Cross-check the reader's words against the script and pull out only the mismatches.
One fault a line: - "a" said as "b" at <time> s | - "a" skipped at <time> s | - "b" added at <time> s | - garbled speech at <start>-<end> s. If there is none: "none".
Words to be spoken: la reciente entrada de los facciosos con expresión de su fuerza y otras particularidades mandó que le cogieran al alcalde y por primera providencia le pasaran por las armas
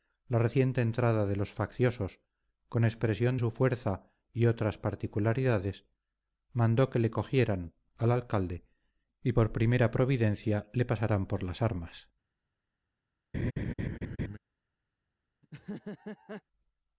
- "de" skipped at 3.4 s